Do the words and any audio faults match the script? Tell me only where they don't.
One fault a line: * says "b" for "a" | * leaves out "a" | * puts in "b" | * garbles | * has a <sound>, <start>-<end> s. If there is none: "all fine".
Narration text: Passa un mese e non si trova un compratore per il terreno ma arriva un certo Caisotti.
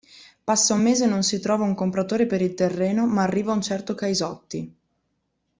all fine